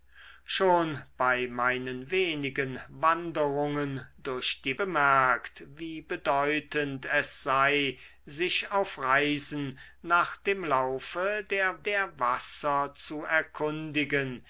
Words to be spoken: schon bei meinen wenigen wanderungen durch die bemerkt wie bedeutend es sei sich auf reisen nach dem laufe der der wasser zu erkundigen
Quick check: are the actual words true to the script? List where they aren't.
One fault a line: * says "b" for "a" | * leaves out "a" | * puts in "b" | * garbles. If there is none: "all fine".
all fine